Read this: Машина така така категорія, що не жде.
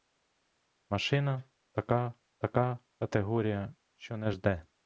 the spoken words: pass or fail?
pass